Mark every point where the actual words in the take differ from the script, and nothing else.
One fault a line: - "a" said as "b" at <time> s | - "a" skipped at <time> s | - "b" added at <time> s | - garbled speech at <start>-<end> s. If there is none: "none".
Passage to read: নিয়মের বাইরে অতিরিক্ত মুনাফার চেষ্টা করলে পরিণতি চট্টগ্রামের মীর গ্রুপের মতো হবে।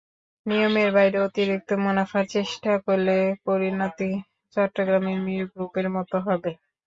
none